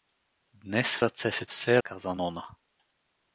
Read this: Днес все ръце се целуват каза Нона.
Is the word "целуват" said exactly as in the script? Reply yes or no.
no